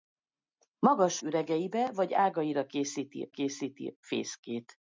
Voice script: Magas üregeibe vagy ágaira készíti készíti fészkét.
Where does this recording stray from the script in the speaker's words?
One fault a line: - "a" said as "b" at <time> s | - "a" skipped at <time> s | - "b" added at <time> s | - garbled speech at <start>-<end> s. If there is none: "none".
none